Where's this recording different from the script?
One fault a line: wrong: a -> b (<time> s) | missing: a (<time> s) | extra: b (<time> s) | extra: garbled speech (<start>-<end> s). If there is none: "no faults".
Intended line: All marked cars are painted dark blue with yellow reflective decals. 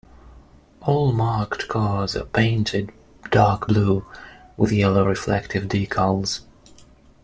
no faults